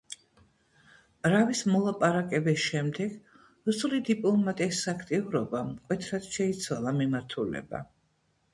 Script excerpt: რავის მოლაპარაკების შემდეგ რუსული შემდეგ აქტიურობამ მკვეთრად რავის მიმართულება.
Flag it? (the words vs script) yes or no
yes